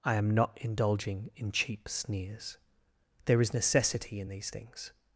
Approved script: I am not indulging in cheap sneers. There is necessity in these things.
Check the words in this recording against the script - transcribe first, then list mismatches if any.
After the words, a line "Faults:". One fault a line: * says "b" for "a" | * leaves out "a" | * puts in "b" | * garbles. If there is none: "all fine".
I am not indulging in cheap sneers. There is necessity in these things.
Faults:
all fine